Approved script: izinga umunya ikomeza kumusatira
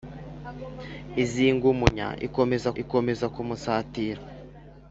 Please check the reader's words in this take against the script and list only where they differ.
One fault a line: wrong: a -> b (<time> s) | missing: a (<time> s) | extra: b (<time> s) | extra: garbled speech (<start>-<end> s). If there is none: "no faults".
extra: ikomeza (2.8 s)